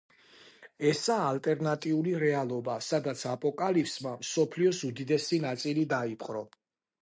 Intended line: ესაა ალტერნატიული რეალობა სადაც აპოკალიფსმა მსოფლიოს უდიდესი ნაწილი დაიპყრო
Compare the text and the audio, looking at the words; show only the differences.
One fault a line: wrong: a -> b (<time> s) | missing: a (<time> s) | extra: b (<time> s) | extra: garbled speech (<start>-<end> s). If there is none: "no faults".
no faults